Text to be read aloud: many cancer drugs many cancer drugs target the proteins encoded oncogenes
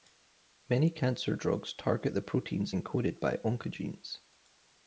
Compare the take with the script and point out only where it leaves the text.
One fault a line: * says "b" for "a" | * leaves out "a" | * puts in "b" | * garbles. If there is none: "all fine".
* leaves out "many cancer drugs"
* puts in "by"